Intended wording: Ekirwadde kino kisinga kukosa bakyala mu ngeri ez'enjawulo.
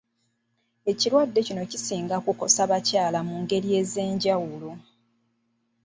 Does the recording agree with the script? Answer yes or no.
yes